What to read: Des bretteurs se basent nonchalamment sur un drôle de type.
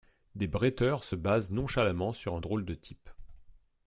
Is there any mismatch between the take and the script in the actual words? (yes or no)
no